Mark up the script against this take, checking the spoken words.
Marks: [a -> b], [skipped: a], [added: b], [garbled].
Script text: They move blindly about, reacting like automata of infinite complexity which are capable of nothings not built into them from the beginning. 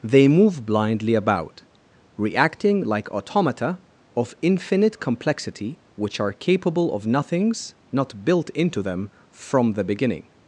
They move blindly about, reacting like automata of infinite complexity which are capable of nothings not built into them from the beginning.